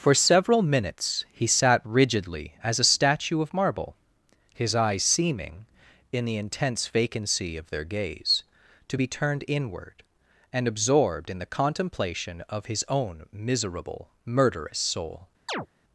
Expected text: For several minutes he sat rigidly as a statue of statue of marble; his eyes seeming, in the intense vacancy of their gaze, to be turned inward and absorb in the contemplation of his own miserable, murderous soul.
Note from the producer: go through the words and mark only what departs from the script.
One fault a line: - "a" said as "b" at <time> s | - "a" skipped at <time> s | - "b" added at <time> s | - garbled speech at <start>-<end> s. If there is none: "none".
- "statue of" skipped at 3.5 s
- "absorb" said as "absorbed" at 10.7 s